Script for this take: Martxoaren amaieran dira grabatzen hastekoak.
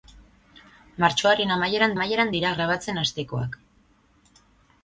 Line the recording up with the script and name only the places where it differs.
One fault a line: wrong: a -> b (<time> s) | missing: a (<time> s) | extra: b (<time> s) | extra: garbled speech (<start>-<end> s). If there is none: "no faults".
extra: amaieran (2.0 s)